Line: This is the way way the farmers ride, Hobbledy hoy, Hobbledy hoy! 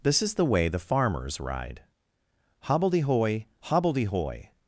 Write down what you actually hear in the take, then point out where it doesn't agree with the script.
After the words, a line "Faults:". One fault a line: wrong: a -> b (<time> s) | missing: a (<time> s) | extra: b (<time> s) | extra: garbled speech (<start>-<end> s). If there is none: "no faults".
This is the way the farmers ride, Hobbledy hoy, Hobbledy hoy!
Faults:
missing: way (0.7 s)